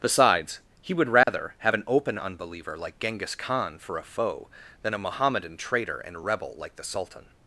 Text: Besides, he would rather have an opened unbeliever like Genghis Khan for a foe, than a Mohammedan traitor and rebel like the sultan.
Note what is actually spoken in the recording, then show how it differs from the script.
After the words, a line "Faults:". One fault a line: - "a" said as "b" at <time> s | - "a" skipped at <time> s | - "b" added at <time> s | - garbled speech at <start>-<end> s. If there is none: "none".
Besides, he would rather have an open unbeliever like Genghis Khan for a foe, than a Mohammedan traitor and rebel like the sultan.
Faults:
- "opened" said as "open" at 1.8 s